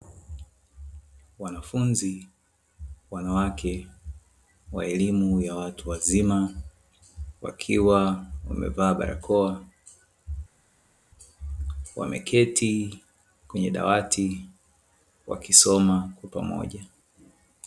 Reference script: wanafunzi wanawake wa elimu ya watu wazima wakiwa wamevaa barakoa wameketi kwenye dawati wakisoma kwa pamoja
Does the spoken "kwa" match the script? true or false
true